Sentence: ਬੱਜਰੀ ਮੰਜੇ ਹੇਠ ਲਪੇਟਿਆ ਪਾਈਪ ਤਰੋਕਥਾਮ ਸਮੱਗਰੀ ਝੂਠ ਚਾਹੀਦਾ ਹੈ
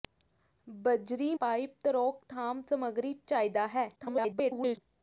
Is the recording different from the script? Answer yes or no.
yes